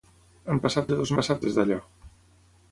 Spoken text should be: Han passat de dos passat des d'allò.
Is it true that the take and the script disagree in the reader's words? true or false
false